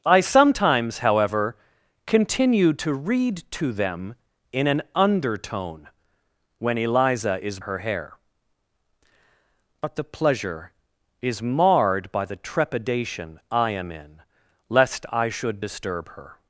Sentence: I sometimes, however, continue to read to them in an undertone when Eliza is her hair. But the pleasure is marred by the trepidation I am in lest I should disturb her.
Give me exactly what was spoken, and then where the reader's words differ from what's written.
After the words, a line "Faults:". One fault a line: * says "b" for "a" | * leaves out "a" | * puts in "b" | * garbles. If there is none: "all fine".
I sometimes, however, continue to read to them in an undertone when Eliza is her hair. But the pleasure is marred by the trepidation I am in lest I should disturb her.
Faults:
all fine